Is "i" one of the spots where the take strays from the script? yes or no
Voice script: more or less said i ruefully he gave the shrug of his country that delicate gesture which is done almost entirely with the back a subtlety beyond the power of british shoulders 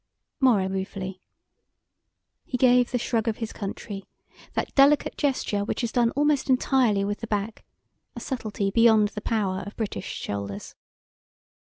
yes